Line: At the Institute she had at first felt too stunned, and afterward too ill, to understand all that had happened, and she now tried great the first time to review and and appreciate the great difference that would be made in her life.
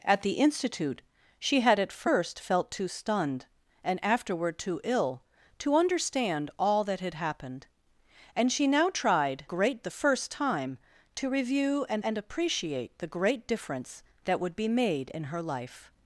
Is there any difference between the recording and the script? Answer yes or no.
no